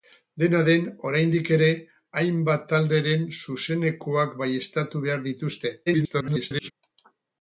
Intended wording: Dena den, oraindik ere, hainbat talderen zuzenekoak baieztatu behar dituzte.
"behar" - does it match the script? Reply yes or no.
yes